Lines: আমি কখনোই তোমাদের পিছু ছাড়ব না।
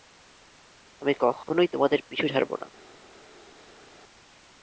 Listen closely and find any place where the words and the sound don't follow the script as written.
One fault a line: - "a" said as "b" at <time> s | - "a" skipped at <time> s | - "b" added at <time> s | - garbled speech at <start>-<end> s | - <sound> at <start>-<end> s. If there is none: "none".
none